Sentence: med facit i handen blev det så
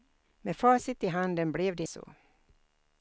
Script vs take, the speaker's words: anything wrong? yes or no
no